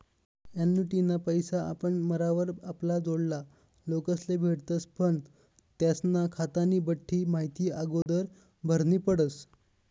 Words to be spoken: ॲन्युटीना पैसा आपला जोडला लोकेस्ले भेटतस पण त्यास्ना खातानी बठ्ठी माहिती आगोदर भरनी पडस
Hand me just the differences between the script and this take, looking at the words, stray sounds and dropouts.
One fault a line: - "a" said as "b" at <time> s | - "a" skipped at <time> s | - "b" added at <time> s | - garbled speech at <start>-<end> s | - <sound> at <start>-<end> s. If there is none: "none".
- "आपण मरावर" added at 1.6 s
- dropout at 8.0-8.1 s